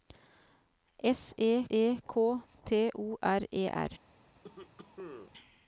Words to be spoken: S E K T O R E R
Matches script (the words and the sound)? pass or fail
fail